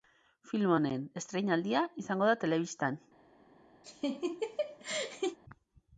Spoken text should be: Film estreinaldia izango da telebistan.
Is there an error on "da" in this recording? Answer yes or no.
no